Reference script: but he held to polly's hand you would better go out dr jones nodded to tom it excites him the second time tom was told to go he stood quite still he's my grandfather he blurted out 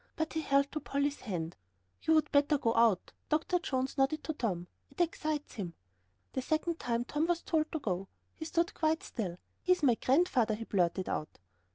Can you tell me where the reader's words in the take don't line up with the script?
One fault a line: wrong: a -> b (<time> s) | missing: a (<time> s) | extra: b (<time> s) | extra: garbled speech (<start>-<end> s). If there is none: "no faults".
no faults